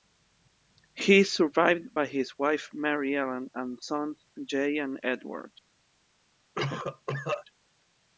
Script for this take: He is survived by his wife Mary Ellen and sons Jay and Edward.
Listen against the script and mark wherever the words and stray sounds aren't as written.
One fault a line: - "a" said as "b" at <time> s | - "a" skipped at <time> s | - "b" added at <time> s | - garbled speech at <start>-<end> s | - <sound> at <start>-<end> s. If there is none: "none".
- cough at 6.5-7.4 s